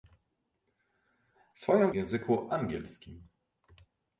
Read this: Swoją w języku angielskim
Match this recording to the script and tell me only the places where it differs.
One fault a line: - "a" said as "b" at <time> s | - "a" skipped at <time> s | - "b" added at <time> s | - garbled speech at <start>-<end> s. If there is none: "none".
none